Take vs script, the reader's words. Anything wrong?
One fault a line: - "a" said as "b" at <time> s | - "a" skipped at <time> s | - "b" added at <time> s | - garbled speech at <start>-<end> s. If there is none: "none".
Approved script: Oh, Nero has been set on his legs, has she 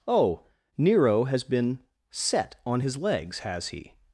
- "she" said as "he" at 3.7 s